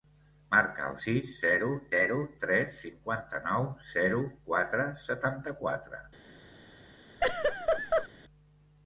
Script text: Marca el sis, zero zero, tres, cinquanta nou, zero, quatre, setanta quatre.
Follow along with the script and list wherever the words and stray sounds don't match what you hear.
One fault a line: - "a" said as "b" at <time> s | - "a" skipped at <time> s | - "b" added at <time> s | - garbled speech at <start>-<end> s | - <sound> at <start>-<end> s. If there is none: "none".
- laugh at 7.2-8.1 s